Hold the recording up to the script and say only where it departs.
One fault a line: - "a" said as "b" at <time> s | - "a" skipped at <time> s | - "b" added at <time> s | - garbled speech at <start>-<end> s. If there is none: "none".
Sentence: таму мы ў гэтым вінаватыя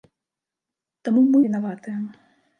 - "ў гэтым" skipped at 1.4 s